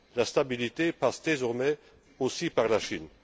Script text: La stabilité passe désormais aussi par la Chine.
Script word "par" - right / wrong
right